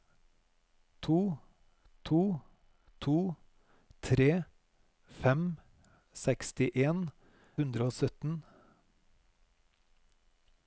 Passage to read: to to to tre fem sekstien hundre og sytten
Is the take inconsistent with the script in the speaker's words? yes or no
no